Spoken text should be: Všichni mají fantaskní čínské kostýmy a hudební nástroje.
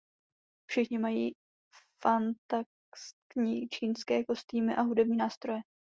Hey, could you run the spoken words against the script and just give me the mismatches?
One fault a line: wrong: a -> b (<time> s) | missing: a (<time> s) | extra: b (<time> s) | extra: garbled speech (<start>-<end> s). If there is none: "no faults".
no faults